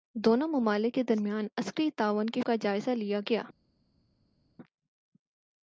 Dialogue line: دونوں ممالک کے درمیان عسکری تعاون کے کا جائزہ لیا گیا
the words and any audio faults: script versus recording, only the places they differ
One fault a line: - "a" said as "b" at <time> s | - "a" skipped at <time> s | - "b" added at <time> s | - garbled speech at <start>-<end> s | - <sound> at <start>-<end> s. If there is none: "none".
none